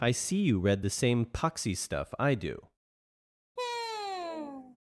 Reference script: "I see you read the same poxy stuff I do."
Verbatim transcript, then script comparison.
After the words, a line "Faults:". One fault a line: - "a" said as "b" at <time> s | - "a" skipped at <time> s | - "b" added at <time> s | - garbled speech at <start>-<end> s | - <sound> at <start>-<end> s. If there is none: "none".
"I see you read the same poxy stuff I do."
Faults:
- sigh at 3.6-4.8 s